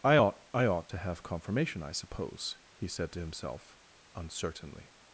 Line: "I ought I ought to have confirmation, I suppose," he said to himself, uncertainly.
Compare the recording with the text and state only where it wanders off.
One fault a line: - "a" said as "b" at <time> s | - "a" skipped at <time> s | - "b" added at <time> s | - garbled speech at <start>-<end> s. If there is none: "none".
none